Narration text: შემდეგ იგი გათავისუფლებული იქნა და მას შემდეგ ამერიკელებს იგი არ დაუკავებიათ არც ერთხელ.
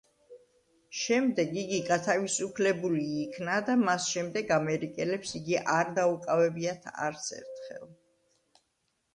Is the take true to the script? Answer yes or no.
yes